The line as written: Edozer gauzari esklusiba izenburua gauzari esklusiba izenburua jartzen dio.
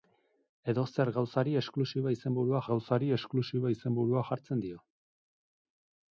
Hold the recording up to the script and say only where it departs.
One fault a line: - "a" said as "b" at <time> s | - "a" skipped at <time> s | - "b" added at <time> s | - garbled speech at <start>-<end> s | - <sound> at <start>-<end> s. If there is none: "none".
none